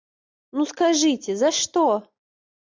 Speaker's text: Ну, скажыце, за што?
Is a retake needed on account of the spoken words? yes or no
no